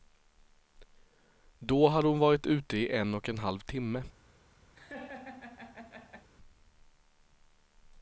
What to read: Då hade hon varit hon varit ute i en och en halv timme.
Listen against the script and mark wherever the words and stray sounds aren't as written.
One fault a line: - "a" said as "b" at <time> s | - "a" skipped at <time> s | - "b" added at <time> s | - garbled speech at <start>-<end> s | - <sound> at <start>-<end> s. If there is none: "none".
- "hon varit" skipped at 2.5 s
- laugh at 4.7-6.3 s